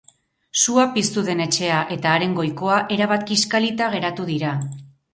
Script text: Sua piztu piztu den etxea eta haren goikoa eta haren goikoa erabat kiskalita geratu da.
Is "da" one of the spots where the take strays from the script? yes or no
yes